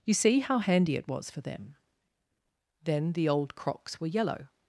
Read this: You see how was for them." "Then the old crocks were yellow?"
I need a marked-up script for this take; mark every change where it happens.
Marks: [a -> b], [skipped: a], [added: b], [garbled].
You see how [added: handy it] was for them." "Then the old crocks were yellow?"